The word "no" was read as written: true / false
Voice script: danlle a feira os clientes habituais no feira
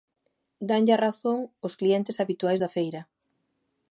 false